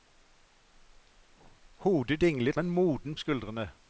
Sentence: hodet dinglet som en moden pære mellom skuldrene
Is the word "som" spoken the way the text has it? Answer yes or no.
no